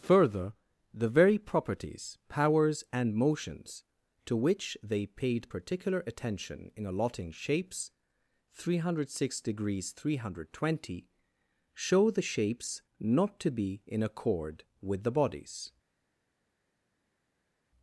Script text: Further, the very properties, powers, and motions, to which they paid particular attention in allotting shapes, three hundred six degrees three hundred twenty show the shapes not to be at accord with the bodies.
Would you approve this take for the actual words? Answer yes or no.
no